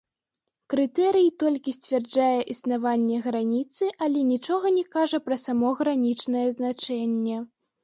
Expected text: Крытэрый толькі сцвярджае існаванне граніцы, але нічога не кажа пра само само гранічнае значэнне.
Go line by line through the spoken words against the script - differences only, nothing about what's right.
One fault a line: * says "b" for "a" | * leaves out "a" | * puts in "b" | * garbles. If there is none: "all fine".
* leaves out "само"